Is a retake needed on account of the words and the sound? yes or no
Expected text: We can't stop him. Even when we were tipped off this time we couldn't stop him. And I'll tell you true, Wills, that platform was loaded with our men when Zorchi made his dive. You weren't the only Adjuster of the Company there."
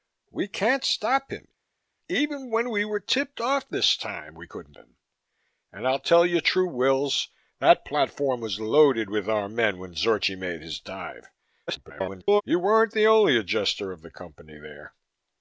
yes